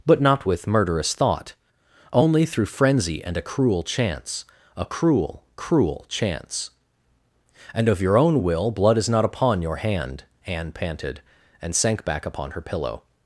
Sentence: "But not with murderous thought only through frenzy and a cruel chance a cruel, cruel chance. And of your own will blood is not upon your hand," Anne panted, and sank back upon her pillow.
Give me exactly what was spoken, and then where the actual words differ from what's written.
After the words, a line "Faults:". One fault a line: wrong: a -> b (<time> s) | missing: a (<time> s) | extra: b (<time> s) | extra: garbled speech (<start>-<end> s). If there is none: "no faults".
"But not with murderous thought only through frenzy and a cruel chance a cruel, cruel chance. And of your own will blood is not upon your hand," Anne panted, and sank back upon her pillow.
Faults:
no faults